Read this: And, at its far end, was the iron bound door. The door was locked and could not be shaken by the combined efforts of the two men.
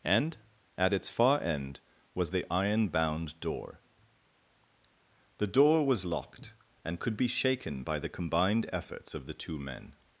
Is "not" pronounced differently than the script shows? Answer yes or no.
yes